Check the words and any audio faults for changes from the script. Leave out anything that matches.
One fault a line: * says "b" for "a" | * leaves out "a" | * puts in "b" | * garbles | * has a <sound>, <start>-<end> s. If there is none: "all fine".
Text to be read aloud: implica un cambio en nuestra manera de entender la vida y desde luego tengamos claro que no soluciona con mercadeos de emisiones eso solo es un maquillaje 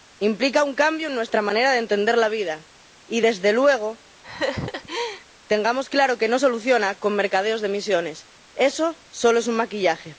* has a laugh, 4.2-5.2 s